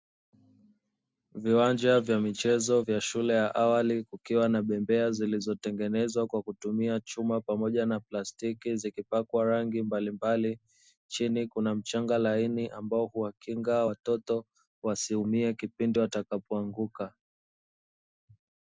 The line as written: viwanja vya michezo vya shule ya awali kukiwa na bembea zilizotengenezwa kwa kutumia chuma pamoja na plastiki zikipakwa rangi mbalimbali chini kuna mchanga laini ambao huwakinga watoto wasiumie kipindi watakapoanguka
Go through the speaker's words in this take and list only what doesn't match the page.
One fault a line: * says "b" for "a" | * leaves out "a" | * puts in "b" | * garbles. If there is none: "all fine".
all fine